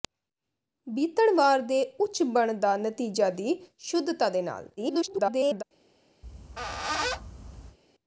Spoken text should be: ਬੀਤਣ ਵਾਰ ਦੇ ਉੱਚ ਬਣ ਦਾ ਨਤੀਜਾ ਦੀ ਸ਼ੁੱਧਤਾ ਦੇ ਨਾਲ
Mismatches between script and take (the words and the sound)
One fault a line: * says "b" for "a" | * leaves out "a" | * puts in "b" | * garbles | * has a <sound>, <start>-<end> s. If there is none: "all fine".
* garbles
* has a squeak, 6.2-7.8 s